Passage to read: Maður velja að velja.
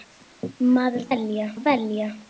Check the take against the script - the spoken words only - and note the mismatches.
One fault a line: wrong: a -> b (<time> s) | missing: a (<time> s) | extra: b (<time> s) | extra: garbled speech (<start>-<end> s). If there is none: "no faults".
no faults